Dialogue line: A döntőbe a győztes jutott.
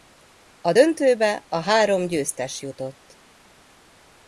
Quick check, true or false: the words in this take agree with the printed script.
false